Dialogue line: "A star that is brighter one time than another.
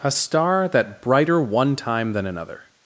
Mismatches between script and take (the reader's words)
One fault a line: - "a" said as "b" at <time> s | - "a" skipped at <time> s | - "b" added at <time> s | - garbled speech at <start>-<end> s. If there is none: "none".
- "is" skipped at 1.0 s